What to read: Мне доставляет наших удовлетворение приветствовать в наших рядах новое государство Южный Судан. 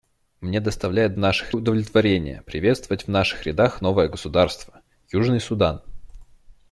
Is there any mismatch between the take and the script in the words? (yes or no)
no